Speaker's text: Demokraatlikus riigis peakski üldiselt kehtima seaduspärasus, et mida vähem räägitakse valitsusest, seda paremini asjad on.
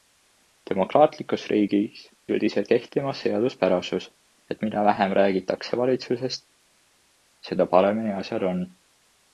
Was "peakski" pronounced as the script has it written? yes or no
no